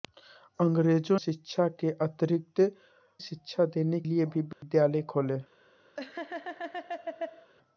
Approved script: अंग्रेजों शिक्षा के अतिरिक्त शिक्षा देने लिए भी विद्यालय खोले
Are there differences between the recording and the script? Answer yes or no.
no